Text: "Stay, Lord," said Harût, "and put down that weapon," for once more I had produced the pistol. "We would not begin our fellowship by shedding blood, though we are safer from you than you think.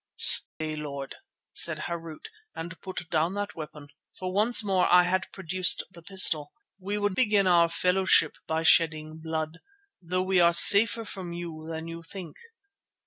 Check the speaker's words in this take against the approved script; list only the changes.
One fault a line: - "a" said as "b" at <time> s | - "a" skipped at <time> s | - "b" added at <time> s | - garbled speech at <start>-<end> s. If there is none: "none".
- "not" skipped at 7.1 s